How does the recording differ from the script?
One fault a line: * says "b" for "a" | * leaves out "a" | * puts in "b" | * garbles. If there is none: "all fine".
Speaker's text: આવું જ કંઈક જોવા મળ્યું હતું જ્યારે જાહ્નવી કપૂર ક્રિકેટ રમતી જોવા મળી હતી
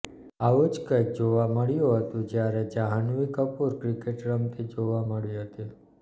all fine